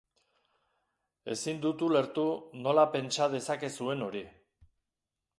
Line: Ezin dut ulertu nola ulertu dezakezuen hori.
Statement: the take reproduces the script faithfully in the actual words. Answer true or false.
false